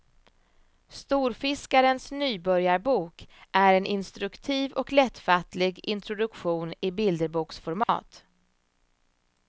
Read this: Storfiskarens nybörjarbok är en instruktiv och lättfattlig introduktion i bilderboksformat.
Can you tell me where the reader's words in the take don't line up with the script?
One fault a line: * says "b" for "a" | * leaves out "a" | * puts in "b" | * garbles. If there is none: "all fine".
all fine